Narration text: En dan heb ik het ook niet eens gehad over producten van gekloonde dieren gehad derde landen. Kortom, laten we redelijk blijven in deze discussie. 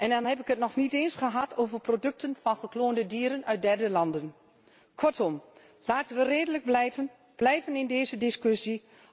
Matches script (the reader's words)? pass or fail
fail